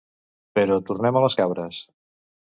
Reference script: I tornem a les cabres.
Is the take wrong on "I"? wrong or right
wrong